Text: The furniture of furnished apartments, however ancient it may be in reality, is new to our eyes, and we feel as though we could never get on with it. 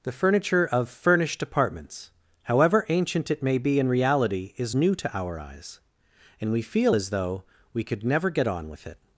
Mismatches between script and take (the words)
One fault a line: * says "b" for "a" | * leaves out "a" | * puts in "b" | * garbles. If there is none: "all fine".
all fine